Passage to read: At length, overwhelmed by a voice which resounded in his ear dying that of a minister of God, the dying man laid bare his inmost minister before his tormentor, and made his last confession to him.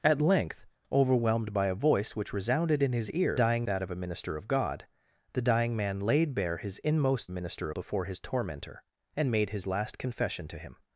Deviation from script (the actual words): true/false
false